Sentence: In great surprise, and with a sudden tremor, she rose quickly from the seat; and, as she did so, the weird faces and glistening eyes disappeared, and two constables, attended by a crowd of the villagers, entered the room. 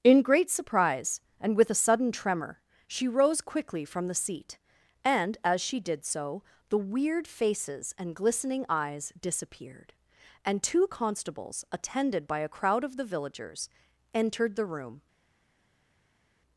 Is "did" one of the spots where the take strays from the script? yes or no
no